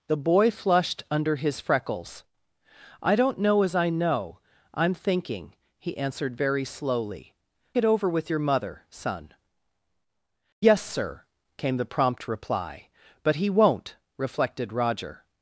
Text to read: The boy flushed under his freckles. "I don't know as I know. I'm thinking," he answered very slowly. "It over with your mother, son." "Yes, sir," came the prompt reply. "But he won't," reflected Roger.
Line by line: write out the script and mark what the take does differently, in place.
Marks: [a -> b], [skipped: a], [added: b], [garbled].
The boy flushed under his freckles. "I don't know as I know. I'm thinking," he answered very slowly. "It over with your mother, son." "Yes, sir," came the prompt reply. "But he won't," reflected Roger.